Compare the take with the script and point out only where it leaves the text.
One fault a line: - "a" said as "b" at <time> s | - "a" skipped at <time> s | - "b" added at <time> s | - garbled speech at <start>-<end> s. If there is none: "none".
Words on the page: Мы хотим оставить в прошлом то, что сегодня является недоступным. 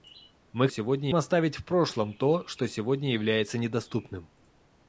- "хотим" said as "сегодня" at 0.7 s